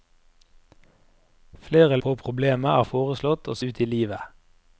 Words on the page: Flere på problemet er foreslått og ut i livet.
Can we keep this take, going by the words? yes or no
yes